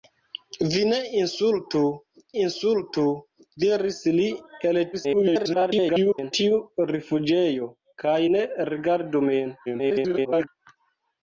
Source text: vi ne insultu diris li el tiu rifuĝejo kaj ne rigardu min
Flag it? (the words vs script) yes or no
yes